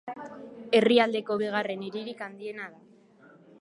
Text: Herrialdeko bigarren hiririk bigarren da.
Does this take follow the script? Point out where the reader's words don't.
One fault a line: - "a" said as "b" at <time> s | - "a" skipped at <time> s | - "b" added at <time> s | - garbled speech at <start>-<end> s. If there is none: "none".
- "bigarren" said as "handiena" at 2.3 s